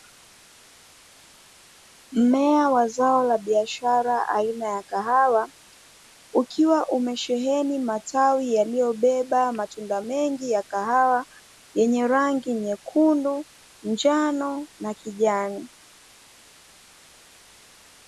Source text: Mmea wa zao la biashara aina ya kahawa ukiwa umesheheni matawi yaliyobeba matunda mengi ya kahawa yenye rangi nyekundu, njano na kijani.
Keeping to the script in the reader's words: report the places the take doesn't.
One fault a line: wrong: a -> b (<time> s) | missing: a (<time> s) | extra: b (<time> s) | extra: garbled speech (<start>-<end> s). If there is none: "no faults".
no faults